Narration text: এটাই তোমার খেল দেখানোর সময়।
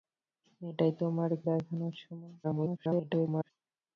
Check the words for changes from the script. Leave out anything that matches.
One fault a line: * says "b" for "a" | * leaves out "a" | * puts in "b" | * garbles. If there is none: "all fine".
* leaves out "খেল"
* garbles